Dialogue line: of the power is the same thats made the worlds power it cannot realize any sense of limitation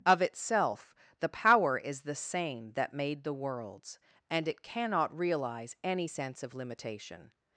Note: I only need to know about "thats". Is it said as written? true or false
false